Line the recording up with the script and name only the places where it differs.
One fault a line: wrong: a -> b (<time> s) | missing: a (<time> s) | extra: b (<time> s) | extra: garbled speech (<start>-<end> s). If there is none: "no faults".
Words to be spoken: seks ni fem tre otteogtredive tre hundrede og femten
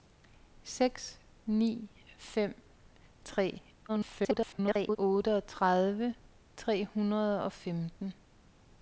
extra: garbled speech (3.9-5.0 s)